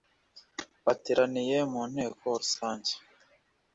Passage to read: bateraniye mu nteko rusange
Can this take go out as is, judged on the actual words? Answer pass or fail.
pass